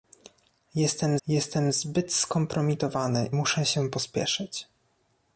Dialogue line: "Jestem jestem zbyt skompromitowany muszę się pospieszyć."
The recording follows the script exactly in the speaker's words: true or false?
true